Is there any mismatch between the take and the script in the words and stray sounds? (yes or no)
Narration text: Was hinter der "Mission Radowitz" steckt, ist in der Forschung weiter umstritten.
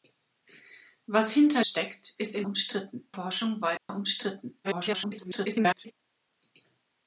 yes